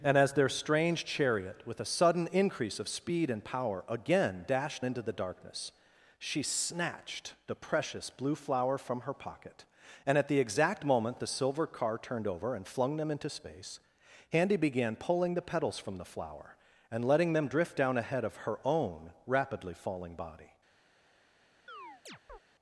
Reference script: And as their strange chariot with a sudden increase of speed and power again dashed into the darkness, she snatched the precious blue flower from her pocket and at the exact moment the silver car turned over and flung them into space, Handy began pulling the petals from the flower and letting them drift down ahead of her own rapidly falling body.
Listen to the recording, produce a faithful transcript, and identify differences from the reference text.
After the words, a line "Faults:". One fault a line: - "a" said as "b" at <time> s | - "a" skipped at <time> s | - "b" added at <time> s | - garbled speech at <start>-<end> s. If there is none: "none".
And as their strange chariot with a sudden increase of speed and power again dashed into the darkness, she snatched the precious blue flower from her pocket and at the exact moment the silver car turned over and flung them into space, Handy began pulling the petals from the flower and letting them drift down ahead of her own rapidly falling body.
Faults:
none